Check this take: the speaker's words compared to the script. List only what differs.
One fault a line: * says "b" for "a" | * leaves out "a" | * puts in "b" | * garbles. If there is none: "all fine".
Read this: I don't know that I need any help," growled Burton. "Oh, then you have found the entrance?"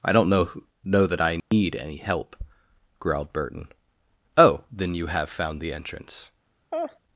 * puts in "know"